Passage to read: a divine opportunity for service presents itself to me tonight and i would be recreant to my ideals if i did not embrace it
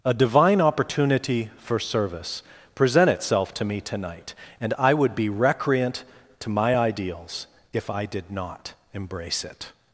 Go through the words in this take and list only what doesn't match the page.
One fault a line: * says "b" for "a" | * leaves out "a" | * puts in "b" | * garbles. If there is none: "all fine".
* says "present" for "presents"